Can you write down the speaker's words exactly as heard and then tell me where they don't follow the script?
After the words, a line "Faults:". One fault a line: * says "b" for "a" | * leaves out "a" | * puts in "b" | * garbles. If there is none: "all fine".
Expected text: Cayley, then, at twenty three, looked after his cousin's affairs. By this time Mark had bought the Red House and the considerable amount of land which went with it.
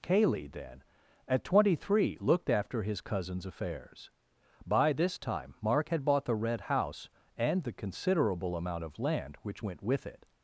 Cayley, then, at twenty three, looked after his cousin's affairs. By this time Mark had bought the Red House and the considerable amount of land which went with it.
Faults:
all fine